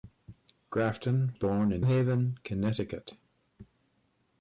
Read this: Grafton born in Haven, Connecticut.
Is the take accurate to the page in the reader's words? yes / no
yes